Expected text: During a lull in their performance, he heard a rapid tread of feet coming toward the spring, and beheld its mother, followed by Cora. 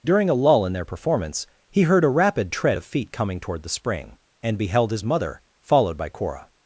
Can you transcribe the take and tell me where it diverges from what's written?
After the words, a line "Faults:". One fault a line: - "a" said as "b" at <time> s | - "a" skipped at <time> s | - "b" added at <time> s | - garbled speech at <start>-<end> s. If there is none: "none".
During a lull in their performance, he heard a rapid tread of feet coming toward the spring, and beheld his mother, followed by Cora.
Faults:
- "its" said as "his" at 4.9 s